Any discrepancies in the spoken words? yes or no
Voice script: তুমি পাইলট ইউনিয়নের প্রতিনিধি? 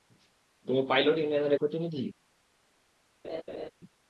no